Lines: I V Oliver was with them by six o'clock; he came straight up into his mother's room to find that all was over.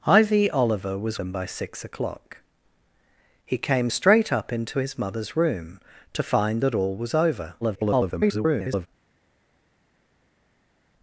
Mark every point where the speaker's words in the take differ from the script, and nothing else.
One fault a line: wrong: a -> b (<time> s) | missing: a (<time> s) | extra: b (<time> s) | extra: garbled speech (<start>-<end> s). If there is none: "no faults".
missing: with (1.2 s)
extra: garbled speech (7.6-8.9 s)